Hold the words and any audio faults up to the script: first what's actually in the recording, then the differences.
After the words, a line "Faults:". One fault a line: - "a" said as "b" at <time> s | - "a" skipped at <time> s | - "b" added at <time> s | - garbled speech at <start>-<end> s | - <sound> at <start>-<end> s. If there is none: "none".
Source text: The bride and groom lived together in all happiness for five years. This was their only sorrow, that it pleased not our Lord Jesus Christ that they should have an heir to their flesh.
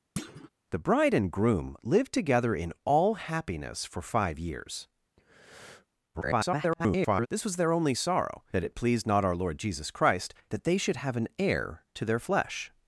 The bride and groom lived together in all happiness for five years. [garbled] This was their only sorrow, that it pleased not our Lord Jesus Christ that they should have an heir to their flesh.
Faults:
- thud at 0.2-0.5 s
- breath at 5.2-5.9 s
- garbled speech at 6.1-7.3 s